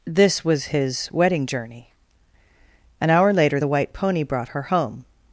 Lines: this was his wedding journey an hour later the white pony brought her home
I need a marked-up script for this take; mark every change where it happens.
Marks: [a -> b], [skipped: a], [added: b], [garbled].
this was his wedding journey an hour later the white pony brought her home